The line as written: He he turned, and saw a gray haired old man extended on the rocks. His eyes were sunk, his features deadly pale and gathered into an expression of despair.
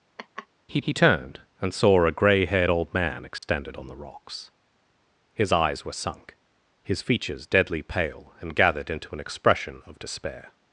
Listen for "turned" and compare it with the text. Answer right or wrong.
right